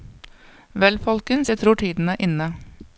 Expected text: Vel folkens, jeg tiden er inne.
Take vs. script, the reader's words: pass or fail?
fail